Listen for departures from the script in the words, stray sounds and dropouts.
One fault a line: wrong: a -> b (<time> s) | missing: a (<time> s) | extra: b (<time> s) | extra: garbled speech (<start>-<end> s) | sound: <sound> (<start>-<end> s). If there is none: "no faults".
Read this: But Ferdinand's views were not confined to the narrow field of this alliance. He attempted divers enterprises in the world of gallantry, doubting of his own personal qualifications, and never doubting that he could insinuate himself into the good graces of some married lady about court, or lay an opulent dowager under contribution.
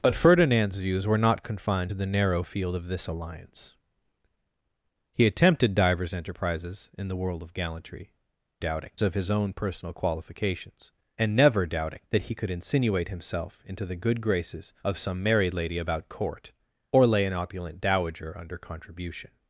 no faults